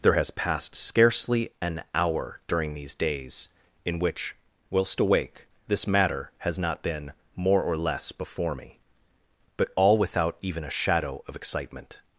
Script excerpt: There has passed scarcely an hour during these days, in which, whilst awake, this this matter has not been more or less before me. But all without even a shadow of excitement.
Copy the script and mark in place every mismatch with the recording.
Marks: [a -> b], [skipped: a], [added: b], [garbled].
There has passed scarcely an hour during these days, in which, whilst awake, this [skipped: this] matter has not been more or less before me. But all without even a shadow of excitement.